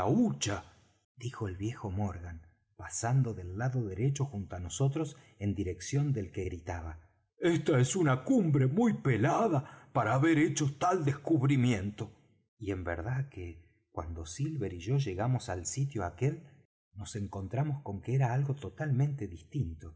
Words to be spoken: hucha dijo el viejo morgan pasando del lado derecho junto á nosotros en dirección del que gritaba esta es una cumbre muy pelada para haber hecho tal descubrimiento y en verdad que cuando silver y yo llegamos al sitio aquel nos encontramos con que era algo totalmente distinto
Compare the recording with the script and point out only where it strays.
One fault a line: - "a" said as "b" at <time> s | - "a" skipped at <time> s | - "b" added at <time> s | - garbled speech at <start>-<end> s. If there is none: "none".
none